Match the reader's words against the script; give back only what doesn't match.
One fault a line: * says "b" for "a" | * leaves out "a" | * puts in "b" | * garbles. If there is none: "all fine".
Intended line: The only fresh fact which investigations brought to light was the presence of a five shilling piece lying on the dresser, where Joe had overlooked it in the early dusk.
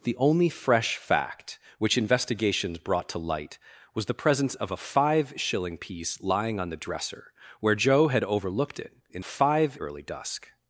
* says "five" for "the"